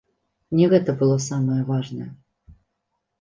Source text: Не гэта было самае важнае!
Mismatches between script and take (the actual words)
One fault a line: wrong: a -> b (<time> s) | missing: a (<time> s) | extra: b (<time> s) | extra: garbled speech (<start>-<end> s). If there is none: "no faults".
no faults